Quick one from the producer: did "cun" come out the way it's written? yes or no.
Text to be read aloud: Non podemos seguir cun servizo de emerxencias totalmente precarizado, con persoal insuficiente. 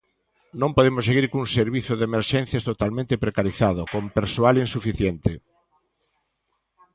yes